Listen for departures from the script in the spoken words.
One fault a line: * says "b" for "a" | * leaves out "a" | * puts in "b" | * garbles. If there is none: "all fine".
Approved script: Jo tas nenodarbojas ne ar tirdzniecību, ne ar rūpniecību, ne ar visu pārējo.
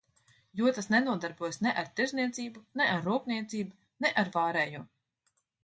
* leaves out "visu"